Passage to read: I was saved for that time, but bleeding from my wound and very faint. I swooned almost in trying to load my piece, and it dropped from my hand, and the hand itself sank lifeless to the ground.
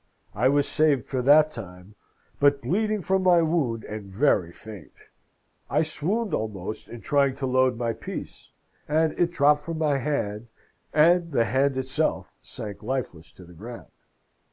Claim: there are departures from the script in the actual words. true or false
false